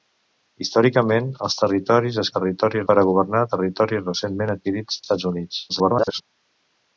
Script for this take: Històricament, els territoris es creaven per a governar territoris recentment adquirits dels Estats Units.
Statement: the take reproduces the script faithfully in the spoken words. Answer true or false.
false